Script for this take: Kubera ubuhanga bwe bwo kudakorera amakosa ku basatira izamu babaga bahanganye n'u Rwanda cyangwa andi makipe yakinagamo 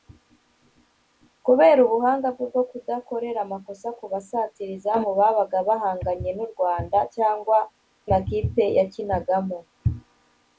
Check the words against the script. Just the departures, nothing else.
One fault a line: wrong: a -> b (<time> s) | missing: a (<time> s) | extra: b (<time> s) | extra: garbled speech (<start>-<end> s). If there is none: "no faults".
missing: andi (7.6 s)